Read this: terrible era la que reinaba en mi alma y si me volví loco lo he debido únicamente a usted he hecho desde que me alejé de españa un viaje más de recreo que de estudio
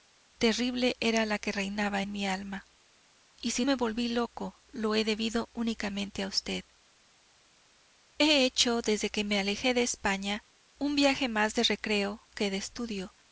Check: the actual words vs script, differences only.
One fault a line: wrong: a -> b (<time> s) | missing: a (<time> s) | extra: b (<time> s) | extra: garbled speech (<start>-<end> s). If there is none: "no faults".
no faults